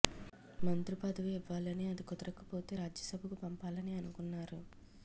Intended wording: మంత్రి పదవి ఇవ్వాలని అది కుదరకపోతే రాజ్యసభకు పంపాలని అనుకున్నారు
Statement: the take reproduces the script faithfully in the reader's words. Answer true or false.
true